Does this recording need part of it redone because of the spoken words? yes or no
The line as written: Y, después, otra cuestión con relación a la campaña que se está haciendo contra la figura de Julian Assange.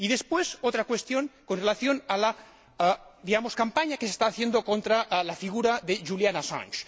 no